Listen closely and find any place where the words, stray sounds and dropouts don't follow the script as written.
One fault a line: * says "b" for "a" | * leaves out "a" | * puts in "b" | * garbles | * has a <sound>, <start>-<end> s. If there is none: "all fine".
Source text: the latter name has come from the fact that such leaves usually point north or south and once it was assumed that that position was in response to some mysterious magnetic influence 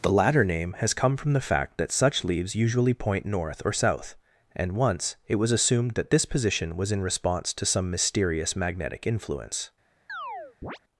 * says "this" for "that"
* has a chirp, 10.1-10.8 s